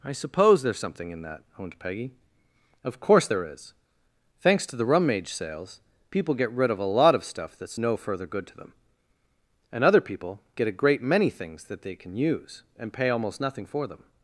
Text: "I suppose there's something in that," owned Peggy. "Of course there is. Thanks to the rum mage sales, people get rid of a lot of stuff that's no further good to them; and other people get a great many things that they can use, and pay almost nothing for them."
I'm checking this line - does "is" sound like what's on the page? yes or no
yes